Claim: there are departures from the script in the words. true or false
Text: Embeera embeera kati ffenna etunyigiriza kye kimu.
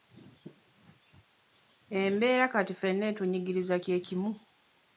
true